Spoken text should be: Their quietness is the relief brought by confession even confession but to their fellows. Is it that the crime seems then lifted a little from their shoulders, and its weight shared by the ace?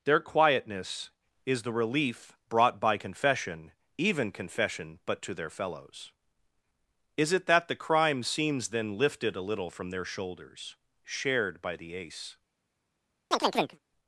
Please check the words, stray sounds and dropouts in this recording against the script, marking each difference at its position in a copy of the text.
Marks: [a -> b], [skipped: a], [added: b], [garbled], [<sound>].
Their quietness is the relief brought by confession even confession but to their fellows. Is it that the crime seems then lifted a little from their shoulders, [skipped: and its weight] shared by the ace? [chirp]